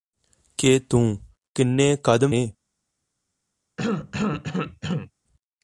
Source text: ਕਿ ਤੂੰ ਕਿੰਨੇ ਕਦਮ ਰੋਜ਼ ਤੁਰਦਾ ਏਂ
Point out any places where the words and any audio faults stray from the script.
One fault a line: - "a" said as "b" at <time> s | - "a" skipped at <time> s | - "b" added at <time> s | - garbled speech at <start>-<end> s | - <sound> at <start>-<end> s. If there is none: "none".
- "ਰੋਜ਼ ਤੁਰਦਾ" skipped at 2.4 s
- cough at 3.8-5.1 s